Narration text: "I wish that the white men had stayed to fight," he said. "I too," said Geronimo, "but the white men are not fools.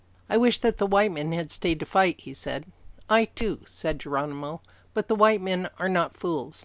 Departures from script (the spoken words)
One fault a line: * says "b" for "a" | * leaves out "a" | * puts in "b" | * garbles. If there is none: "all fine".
all fine